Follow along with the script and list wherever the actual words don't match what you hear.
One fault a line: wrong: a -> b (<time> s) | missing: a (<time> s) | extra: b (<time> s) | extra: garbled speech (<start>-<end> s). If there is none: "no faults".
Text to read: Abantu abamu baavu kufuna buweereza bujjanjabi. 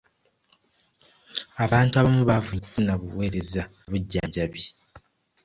no faults